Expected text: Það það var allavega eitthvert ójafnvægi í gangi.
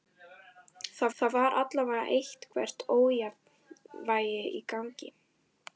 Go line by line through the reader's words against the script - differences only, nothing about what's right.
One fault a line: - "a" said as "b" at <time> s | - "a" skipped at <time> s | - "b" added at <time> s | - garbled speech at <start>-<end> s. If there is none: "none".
none